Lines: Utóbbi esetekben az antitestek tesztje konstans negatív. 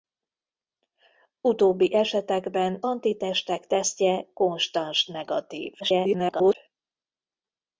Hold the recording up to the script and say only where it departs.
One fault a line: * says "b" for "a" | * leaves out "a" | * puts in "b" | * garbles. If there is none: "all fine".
* leaves out "az"
* garbles